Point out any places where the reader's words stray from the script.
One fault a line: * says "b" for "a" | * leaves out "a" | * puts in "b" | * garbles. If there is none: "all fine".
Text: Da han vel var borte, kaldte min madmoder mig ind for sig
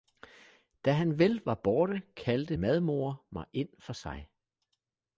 * leaves out "min"